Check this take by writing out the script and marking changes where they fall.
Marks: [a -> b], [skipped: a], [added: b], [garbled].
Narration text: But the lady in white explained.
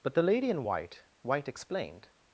But the lady in white [added: white] explained.